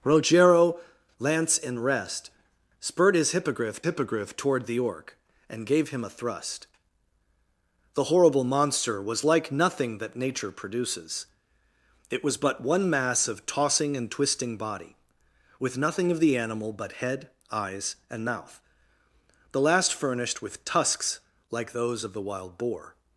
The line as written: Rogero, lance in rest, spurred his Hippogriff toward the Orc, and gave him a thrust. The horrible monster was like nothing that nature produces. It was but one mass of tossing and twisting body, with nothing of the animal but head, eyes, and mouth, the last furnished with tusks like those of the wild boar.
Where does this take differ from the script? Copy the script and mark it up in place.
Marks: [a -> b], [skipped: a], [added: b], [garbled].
Rogero, lance in rest, spurred his Hippogriff [added: Hippogriff] toward the Orc, and gave him a thrust. The horrible monster was like nothing that nature produces. It was but one mass of tossing and twisting body, with nothing of the animal but head, eyes, and mouth, the last furnished with tusks like those of the wild boar.